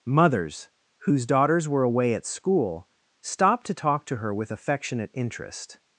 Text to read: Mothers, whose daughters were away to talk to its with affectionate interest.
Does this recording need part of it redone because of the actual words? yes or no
yes